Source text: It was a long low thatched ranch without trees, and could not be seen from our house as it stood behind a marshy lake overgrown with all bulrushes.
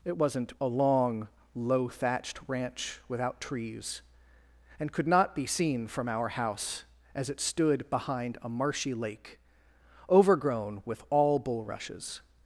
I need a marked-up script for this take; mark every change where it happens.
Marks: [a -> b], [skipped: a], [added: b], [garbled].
It [was -> wasn't] a long low thatched ranch without trees, and could not be seen from our house as it stood behind a marshy lake overgrown with all bulrushes.